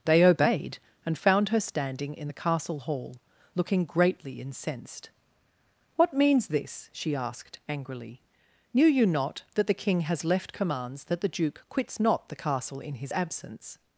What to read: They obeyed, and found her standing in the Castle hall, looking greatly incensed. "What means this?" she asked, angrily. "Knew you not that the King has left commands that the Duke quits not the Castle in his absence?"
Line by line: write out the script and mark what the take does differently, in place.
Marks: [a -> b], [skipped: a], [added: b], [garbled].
They obeyed, and found her standing in the Castle hall, looking greatly incensed. "What means this?" she asked, angrily. "Knew you not that the King has left commands that the Duke quits not the Castle in his absence?"